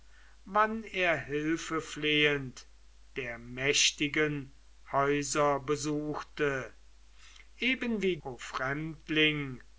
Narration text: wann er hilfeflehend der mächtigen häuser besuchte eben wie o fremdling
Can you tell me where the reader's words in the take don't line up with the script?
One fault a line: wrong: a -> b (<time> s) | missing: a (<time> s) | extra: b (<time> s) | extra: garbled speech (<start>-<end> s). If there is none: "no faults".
no faults